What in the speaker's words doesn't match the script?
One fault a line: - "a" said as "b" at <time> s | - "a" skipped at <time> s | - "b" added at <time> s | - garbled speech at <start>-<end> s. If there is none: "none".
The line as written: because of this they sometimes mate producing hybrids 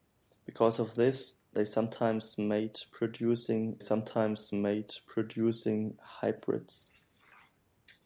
- "sometimes mate producing" added at 3.8 s